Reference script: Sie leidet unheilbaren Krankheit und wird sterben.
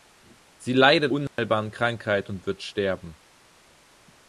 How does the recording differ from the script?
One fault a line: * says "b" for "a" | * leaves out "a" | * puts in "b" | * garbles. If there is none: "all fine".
all fine